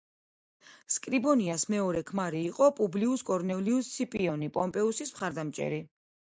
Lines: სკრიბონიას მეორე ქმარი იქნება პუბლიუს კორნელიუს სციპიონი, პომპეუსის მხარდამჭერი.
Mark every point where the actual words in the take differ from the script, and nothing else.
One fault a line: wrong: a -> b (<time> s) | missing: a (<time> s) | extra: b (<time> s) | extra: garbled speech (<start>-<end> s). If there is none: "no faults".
wrong: იქნება -> იყო (2.5 s)